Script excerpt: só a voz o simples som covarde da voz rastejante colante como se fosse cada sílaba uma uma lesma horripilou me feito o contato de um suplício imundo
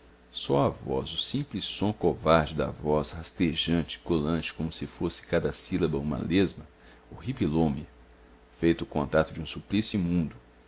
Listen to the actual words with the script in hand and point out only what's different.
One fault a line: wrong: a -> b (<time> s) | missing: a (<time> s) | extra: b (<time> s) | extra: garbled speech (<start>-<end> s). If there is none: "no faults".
missing: uma (6.2 s)